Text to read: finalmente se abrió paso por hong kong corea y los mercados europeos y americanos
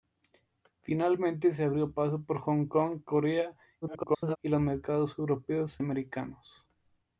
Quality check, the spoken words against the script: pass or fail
fail